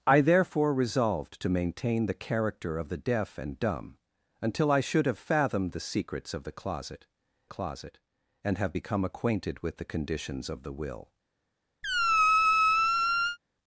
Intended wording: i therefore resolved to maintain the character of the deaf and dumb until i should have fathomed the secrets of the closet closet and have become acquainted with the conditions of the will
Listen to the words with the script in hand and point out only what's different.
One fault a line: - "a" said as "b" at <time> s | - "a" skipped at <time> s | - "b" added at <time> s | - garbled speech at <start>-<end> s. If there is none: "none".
none